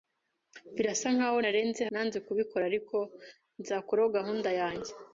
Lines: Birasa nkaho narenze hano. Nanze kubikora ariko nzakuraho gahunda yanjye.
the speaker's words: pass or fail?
fail